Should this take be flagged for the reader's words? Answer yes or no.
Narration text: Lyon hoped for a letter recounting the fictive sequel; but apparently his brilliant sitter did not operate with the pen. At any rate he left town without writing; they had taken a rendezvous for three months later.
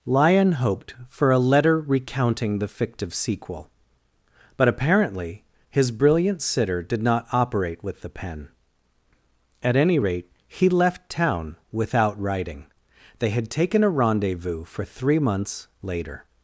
no